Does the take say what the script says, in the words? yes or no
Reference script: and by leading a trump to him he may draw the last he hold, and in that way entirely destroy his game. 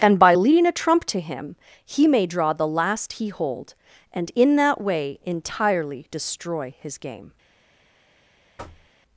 yes